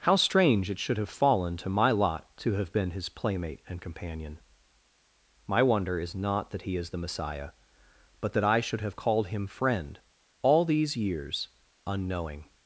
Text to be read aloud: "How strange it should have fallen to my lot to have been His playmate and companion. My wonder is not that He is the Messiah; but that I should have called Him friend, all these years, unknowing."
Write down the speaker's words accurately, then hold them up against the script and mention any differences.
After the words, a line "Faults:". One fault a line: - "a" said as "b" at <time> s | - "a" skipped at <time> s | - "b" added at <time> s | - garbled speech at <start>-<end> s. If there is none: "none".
"How strange it should have fallen to my lot to have been His playmate and companion. My wonder is not that He is the Messiah; but that I should have called Him friend, all these years, unknowing."
Faults:
none